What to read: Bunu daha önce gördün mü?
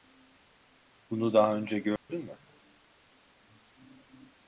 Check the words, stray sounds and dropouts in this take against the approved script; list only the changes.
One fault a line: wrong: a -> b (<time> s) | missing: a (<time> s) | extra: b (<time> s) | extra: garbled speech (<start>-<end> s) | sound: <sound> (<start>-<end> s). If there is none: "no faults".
sound: dropout (2.0-2.1 s)